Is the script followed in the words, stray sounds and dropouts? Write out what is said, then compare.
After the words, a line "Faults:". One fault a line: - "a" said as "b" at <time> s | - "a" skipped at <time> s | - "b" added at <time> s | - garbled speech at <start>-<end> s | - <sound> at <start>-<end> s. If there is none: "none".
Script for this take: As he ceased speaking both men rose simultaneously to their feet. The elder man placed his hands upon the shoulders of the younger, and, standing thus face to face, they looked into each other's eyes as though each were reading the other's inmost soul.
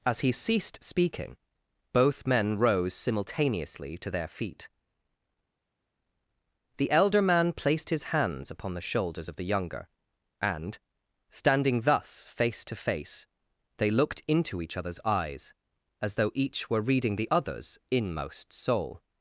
As he ceased speaking both men rose simultaneously to their feet. The elder man placed his hands upon the shoulders of the younger, and, standing thus face to face, they looked into each other's eyes as though each were reading the other's inmost soul.
Faults:
none